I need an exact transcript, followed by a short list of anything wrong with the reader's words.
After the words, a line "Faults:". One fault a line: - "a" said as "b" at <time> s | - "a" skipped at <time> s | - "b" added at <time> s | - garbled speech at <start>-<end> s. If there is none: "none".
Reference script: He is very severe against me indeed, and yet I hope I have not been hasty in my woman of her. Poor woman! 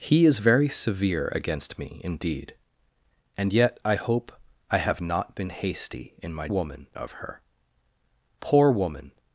He is very severe against me indeed, and yet I hope I have not been hasty in my woman of her. Poor woman!
Faults:
none